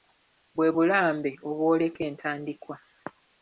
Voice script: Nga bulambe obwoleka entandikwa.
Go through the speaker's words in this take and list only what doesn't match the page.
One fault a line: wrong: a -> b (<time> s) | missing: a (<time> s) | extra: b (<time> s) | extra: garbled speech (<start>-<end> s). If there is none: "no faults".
wrong: Nga -> Bwe (0.6 s)